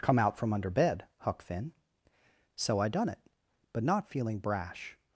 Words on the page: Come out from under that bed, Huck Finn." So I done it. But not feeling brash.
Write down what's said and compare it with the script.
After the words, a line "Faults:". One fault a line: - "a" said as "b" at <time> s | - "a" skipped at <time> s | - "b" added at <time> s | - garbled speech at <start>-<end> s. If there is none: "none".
Come out from under bed, Huck Finn." So I done it. But not feeling brash.
Faults:
- "that" skipped at 0.7 s